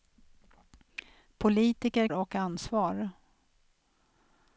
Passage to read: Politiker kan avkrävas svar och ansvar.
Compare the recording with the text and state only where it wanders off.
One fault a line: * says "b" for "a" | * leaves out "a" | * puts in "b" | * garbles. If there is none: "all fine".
* leaves out "kan avkrävas svar"